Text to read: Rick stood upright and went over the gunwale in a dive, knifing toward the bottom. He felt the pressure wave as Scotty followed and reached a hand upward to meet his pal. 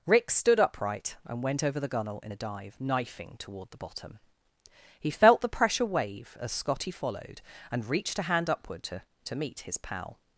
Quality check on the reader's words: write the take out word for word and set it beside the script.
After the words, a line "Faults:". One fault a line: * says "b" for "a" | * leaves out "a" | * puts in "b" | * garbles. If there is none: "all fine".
Rick stood upright and went over the gunwale in a dive, knifing toward the bottom. He felt the pressure wave as Scotty followed and reached a hand upward to to meet his pal.
Faults:
* puts in "to"